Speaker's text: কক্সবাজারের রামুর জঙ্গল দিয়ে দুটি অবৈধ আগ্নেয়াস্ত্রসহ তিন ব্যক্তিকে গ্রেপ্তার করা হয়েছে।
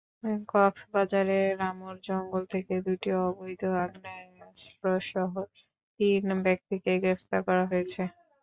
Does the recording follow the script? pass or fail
fail